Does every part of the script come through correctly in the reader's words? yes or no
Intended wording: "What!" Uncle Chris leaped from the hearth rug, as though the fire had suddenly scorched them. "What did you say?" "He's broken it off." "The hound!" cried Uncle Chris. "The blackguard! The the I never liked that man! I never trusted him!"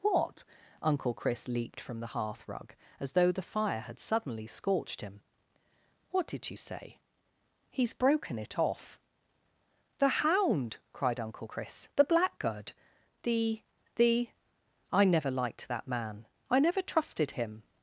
no